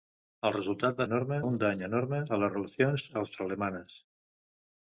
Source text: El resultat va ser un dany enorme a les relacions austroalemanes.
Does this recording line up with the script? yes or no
no